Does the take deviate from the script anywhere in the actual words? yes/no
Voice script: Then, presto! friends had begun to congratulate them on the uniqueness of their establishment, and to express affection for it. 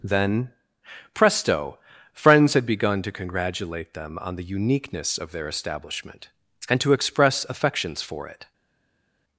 yes